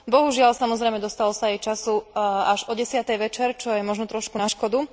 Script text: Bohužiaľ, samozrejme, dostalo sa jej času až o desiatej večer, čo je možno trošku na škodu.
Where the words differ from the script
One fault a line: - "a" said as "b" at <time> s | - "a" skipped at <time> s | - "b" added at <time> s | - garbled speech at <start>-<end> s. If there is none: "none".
none